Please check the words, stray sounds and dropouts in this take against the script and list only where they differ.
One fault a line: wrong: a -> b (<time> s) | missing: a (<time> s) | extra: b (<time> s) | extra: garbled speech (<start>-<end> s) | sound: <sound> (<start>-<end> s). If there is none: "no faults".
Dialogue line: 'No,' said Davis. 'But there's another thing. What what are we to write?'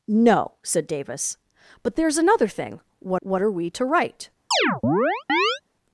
sound: chirp (4.5-5.6 s)